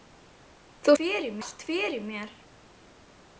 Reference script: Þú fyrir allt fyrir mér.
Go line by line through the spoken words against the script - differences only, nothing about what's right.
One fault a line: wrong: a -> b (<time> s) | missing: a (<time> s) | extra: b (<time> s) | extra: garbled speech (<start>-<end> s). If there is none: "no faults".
no faults